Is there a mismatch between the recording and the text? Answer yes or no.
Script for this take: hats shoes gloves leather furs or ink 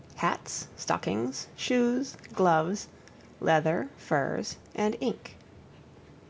yes